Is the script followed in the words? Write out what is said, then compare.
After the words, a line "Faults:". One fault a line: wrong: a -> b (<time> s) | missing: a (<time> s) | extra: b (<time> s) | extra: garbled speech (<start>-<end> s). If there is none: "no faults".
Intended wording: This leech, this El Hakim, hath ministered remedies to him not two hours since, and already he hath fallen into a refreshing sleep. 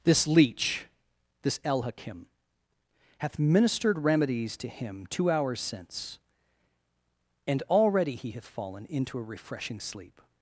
This leech, this El Hakim, hath ministered remedies to him two hours since, and already he hath fallen into a refreshing sleep.
Faults:
missing: not (5.1 s)